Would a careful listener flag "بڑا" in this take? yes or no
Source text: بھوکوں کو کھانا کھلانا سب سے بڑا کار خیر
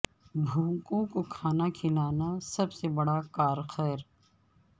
no